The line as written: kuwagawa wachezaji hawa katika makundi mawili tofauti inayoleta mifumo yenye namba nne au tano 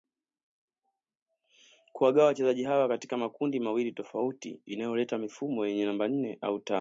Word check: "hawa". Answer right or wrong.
right